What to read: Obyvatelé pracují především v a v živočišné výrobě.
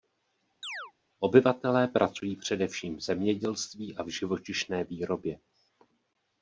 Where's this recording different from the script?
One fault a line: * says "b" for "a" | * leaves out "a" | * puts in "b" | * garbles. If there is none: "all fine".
* puts in "zemědělství"